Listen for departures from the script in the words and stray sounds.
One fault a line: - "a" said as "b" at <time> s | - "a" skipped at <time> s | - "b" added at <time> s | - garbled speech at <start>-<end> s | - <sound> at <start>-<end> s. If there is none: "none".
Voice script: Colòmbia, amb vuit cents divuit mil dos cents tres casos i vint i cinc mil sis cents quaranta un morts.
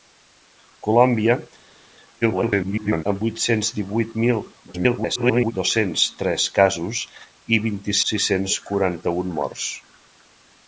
- garbled speech at 2.2-3.0 s
- garbled speech at 4.7-5.5 s
- "cinc mil" skipped at 8.0 s